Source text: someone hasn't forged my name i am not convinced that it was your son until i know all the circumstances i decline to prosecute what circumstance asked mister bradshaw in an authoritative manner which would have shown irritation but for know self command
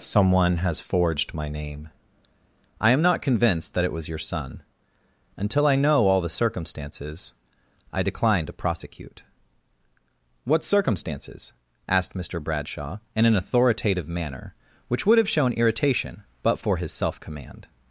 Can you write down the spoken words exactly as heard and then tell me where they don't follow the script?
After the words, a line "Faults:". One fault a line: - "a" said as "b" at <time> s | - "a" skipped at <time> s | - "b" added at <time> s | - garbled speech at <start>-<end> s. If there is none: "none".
someone has forged my name i am not convinced that it was your son until i know all the circumstances i decline to prosecute what circumstances asked mister bradshaw in an authoritative manner which would have shown irritation but for his self command
Faults:
- "hasn't" said as "has" at 0.6 s
- "circumstance" said as "circumstances" at 10.6 s
- "know" said as "his" at 16.8 s